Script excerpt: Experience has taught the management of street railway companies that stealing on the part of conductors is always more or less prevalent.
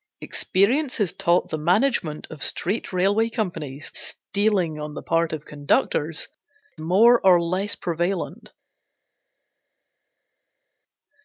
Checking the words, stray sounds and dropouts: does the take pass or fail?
fail